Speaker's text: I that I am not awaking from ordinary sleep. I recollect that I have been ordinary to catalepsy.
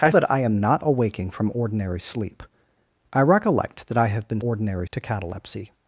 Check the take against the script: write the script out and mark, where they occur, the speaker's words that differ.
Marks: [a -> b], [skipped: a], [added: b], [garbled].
I that I am not awaking from ordinary sleep. I recollect that I have been ordinary to catalepsy.